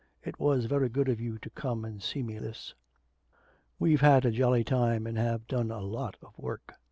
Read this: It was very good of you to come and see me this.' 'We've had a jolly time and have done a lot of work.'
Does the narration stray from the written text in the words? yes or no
no